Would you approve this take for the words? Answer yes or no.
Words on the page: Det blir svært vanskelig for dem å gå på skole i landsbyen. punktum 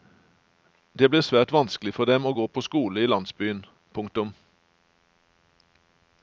yes